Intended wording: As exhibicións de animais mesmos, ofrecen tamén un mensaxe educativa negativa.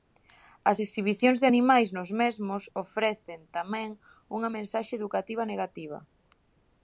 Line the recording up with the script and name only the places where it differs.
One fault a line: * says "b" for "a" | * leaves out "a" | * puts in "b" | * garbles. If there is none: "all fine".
* puts in "nos"
* says "unha" for "un"